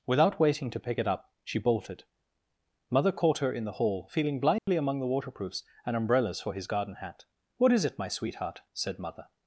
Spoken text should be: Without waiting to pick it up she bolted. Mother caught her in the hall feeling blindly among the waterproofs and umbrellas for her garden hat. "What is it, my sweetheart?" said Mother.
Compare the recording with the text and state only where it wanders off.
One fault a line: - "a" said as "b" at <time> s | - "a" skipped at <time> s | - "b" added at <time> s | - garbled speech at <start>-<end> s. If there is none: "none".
- "her" said as "his" at 6.5 s